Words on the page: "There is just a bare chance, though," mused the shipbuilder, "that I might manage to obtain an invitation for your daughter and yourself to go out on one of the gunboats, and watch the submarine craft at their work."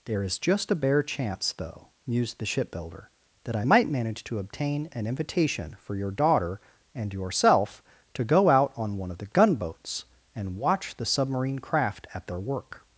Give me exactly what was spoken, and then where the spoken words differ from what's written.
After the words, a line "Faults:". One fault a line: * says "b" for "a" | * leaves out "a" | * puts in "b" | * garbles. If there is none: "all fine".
"There is just a bare chance, though," mused the shipbuilder, "that I might manage to obtain an invitation for your daughter and yourself to go out on one of the gunboats, and watch the submarine craft at their work."
Faults:
all fine